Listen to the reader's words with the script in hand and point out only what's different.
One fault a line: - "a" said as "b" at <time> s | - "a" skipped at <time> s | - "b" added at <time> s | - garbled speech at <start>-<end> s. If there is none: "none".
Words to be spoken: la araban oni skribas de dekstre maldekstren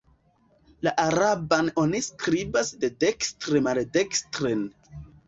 none